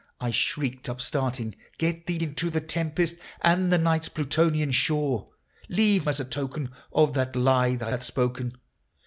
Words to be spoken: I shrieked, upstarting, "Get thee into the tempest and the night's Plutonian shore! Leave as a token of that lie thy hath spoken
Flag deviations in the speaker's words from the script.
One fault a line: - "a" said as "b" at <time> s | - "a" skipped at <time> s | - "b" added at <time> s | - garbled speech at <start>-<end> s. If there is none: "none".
none